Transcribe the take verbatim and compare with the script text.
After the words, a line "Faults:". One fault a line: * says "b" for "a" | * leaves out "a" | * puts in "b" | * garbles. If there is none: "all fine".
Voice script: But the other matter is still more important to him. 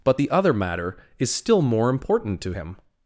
But the other matter is still more important to him.
Faults:
all fine